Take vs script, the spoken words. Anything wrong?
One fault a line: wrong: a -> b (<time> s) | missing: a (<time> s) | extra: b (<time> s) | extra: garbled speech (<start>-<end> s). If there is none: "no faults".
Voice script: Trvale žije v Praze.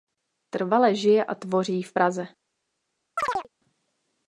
extra: a tvoří (1.2 s)